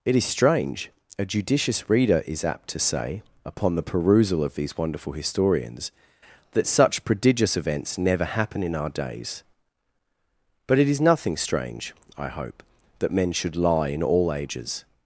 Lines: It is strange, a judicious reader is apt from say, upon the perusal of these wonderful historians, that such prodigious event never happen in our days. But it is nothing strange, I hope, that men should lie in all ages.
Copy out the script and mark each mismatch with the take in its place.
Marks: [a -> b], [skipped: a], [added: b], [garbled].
It is strange, a judicious reader is apt [from -> to] say, upon the perusal of these wonderful historians, that such prodigious [event -> events] never happen in our days. But it is nothing strange, I hope, that men should lie in all ages.